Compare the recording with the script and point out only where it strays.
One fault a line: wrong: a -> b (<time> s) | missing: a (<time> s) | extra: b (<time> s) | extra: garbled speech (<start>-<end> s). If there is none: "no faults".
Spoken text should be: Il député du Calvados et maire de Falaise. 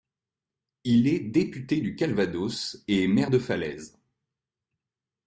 extra: est (1.1 s)